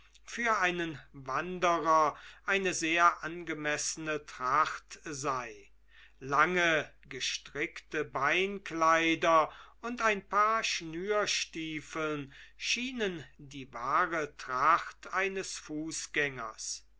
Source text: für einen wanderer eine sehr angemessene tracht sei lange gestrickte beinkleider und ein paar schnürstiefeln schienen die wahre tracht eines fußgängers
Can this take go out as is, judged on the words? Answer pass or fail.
pass